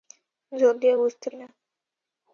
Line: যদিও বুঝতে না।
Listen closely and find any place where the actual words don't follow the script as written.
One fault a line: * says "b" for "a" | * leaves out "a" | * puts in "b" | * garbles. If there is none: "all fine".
all fine